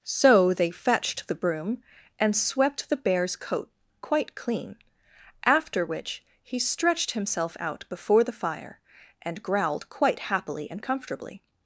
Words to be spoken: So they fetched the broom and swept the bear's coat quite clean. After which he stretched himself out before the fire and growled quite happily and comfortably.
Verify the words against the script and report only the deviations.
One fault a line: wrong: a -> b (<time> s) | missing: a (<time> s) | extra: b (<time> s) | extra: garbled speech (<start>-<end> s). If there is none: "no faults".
no faults